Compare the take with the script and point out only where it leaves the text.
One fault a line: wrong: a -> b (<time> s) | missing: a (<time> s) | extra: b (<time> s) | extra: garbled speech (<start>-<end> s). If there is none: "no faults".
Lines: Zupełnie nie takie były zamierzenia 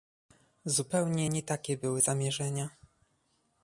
no faults